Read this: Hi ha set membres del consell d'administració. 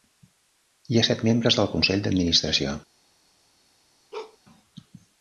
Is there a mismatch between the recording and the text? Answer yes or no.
no